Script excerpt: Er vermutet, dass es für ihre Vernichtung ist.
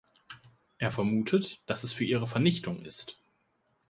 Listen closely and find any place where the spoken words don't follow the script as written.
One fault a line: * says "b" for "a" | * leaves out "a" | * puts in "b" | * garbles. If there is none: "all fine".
all fine